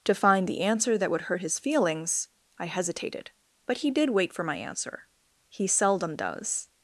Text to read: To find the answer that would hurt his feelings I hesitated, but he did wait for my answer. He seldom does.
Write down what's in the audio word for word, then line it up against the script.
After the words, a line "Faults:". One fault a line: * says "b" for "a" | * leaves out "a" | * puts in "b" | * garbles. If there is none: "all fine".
To find the answer that would hurt his feelings I hesitated, but he did wait for my answer. He seldom does.
Faults:
all fine